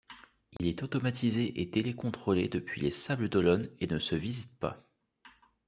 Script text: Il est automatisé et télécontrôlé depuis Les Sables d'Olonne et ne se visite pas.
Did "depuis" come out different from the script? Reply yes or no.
no